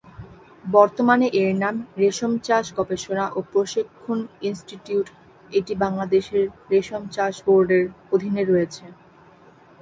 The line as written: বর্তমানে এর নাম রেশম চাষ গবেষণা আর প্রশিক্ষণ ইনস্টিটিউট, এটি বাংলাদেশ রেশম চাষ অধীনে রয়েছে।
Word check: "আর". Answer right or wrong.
wrong